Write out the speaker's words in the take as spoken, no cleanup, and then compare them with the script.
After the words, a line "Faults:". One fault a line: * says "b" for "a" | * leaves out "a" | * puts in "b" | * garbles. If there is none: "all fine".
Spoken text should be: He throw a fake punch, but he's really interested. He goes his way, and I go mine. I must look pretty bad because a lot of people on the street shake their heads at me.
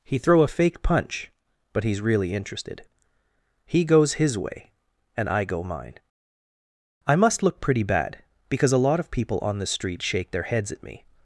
He throw a fake punch, but he's really interested. He goes his way, and I go mine. I must look pretty bad because a lot of people on the street shake their heads at me.
Faults:
all fine